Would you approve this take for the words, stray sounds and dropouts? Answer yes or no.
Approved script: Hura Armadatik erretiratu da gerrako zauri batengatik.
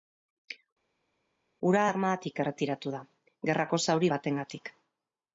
yes